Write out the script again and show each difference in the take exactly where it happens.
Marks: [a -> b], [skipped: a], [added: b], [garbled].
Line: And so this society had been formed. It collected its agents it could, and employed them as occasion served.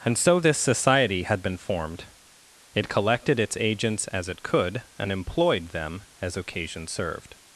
And so this society had been formed. It collected its agents [added: as] it could, and employed them as occasion served.